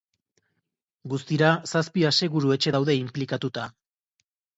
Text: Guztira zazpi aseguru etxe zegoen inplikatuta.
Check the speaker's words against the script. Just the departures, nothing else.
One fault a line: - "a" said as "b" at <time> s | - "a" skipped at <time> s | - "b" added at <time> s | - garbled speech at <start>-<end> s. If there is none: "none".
- "zegoen" said as "daude" at 2.8 s